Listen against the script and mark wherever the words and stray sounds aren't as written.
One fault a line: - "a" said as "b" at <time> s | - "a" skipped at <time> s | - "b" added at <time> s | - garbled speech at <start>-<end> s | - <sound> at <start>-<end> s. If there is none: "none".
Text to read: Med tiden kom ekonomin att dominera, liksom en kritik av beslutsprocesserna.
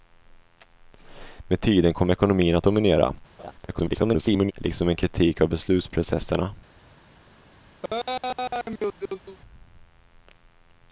- laugh at 3.4-3.5 s
- garbled speech at 3.7-4.5 s
- laugh at 7.8-9.4 s